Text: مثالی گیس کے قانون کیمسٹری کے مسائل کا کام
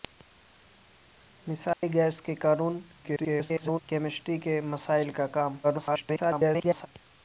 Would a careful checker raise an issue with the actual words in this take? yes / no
yes